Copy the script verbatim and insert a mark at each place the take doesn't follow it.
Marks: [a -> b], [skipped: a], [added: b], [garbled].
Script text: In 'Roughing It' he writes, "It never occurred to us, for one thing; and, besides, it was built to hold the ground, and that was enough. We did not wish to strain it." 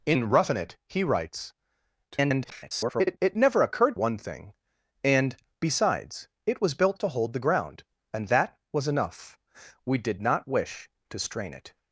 In 'Roughing It' he writes, [garbled] "It never occurred [skipped: to us, for] one thing; and, besides, it was built to hold the ground, and that was enough. We did not wish to strain it."